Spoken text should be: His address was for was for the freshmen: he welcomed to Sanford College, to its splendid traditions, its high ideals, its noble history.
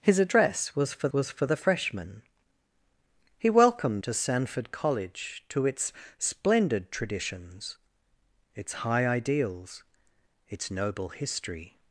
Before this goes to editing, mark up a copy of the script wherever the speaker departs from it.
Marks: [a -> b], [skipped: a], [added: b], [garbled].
His address was for was for the freshmen: he welcomed to Sanford College, to its splendid traditions, its high ideals, its noble history.